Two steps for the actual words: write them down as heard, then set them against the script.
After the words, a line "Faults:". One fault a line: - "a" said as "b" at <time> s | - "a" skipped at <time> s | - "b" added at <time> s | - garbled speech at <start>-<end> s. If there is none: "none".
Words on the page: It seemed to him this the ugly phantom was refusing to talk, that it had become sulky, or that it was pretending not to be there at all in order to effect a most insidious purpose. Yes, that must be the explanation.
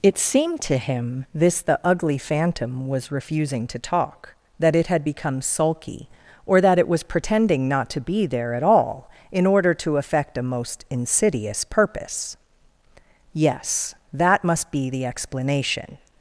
It seemed to him this the ugly phantom was refusing to talk, that it had become sulky, or that it was pretending not to be there at all in order to effect a most insidious purpose. Yes, that must be the explanation.
Faults:
none